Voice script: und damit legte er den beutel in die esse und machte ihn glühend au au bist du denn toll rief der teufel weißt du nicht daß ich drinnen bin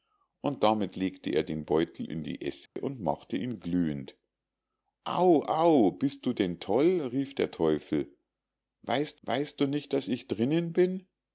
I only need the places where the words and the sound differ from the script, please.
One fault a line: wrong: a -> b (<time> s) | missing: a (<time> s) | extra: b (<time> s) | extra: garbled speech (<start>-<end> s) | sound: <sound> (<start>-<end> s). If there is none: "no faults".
sound: dropout (2.7-2.8 s)
extra: weißt (9.2 s)